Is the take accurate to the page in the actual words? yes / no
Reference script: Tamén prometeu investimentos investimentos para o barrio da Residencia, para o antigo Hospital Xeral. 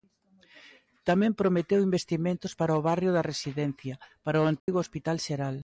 no